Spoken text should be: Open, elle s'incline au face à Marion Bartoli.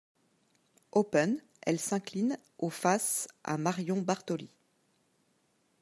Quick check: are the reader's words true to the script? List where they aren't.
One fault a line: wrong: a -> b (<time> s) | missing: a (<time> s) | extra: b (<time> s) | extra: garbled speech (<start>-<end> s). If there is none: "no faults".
no faults